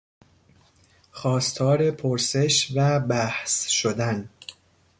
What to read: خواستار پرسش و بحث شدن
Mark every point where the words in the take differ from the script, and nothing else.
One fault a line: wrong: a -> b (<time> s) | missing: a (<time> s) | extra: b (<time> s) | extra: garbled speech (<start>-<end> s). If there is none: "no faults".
no faults